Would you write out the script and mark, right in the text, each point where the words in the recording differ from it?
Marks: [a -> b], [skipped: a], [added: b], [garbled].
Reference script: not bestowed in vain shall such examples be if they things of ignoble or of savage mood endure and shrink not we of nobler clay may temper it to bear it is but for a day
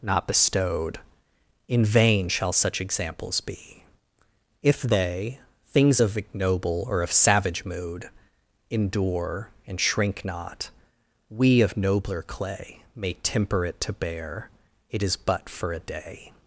not bestowed in vain shall such examples be if they things of ignoble or of savage mood endure and shrink not we of nobler clay may temper it to bear it is but for a day